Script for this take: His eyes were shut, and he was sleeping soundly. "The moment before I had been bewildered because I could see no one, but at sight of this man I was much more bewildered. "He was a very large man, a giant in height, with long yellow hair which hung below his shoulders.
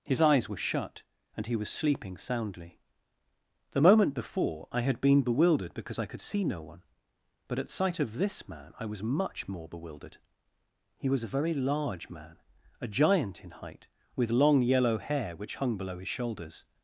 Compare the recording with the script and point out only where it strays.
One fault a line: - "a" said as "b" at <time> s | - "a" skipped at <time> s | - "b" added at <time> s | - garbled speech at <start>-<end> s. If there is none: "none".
none